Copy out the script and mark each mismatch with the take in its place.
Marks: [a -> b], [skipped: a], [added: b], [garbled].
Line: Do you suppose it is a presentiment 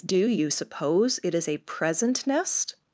Do you suppose it is a [presentiment -> present nest]